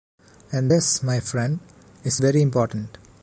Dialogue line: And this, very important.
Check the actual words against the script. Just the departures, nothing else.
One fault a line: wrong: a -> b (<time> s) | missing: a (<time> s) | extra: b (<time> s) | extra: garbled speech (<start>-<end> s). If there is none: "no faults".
extra: my friend is (1.0 s)